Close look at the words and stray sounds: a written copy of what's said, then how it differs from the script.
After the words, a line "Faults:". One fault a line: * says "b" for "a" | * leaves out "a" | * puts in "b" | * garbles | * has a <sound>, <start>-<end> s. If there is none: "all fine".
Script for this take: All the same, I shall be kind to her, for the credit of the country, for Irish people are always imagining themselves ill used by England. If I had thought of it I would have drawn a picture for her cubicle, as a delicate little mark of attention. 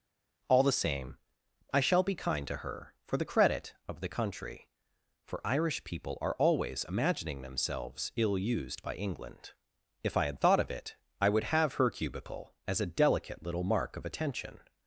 All the same, I shall be kind to her, for the credit of the country, for Irish people are always imagining themselves ill used by England. If I had thought of it I would have her cubicle, as a delicate little mark of attention.
Faults:
* leaves out "drawn a picture for"